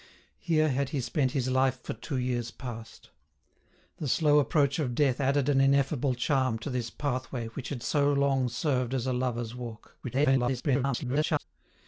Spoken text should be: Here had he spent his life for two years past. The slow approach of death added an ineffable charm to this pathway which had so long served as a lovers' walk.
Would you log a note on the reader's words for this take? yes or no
yes